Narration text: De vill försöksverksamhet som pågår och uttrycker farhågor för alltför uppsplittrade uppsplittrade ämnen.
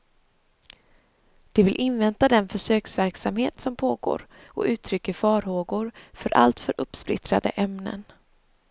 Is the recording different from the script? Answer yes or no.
yes